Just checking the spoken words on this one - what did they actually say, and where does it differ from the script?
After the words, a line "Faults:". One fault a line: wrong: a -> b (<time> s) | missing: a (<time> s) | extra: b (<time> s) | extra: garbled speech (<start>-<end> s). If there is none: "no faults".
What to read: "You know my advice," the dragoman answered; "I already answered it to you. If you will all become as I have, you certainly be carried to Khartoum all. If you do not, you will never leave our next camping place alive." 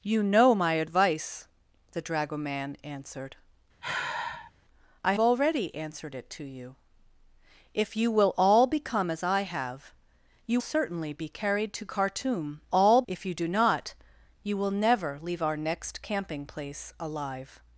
"You know my advice," the dragoman answered; "I already answered it to you. If you will all become as I have, you certainly be carried to Khartoum all. If you do not, you will never leave our next camping place alive."
Faults:
no faults